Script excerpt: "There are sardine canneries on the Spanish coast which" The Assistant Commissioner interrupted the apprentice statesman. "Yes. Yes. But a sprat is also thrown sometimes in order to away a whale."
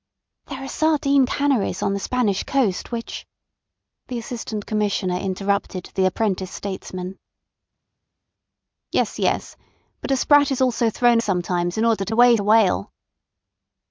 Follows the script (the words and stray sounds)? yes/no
yes